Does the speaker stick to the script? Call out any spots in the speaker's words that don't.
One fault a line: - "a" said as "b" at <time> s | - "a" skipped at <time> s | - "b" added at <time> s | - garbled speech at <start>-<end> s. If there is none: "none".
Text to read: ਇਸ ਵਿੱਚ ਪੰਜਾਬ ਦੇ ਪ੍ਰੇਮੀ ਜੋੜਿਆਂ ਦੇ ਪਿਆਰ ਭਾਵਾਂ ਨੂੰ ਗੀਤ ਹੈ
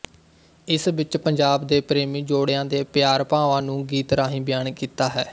- "ਰਾਹੀਂ ਬਿਆਨ ਕੀਤਾ" added at 4.1 s